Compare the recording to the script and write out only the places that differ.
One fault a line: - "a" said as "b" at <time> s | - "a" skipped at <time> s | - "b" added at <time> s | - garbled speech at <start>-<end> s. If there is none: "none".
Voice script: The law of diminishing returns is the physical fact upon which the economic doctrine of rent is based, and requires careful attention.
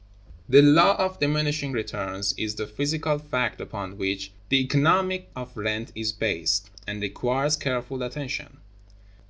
- "doctrine" skipped at 5.4 s